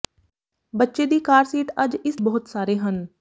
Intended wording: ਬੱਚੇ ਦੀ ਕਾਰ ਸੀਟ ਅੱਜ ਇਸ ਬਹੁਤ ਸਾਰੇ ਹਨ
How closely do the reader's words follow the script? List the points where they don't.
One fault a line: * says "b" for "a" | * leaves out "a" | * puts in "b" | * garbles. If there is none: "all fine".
all fine